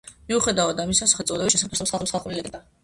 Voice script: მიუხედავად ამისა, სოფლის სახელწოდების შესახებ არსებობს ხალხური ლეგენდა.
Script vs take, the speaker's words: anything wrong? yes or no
yes